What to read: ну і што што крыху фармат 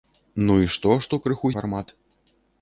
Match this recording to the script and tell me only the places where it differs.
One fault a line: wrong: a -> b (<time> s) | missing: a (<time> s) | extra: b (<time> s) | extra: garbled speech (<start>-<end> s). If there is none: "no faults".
no faults